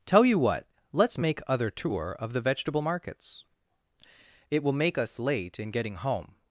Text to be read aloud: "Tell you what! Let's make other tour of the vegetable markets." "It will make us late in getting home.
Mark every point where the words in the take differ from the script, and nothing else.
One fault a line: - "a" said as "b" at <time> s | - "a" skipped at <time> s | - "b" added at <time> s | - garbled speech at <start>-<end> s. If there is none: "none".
none